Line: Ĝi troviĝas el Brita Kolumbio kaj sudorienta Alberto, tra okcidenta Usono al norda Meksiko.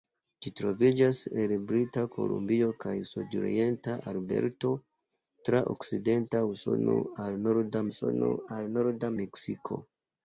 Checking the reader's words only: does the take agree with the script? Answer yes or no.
no